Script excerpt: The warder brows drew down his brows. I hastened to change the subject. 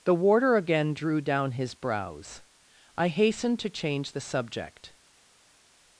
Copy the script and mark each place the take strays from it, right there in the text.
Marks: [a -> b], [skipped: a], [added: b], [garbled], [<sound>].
The warder [brows -> again] drew down his brows. I hastened to change the subject.